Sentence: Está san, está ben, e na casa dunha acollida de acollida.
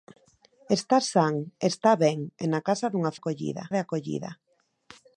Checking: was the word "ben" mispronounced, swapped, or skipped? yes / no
no